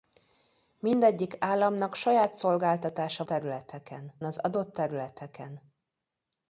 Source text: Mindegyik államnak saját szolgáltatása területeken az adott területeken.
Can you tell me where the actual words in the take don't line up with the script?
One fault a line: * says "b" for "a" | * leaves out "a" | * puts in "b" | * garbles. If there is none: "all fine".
all fine